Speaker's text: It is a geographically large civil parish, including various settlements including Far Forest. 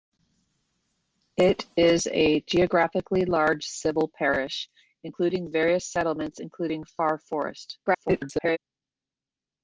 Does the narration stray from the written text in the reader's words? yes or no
yes